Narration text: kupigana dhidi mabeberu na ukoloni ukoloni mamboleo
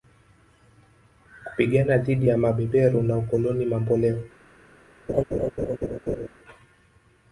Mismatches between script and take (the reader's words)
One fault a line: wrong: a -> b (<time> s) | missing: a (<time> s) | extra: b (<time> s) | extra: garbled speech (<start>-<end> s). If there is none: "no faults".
extra: ya (2.3 s)
missing: ukoloni (3.6 s)